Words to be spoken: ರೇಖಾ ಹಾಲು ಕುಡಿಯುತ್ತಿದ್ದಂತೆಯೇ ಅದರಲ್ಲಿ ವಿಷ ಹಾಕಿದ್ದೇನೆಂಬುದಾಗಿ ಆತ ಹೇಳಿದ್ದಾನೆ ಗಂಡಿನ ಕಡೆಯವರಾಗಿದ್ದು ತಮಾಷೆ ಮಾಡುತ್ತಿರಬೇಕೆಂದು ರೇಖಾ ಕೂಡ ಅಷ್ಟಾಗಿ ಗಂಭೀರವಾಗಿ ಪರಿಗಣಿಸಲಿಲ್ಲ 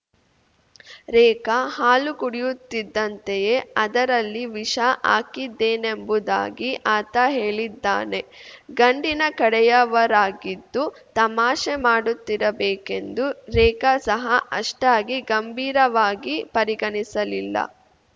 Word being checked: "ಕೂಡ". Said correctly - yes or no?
no